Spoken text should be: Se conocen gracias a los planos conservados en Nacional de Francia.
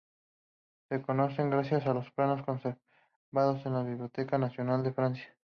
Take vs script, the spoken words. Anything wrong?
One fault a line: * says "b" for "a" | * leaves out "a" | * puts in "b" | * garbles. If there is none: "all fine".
* puts in "la Biblioteca"